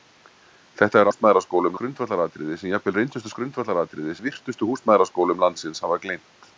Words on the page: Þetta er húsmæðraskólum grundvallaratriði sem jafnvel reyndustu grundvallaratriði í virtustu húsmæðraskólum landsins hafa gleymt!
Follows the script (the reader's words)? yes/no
yes